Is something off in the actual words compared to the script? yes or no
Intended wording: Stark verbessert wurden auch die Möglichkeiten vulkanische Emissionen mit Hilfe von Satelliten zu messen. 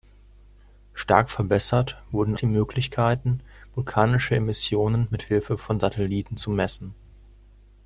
yes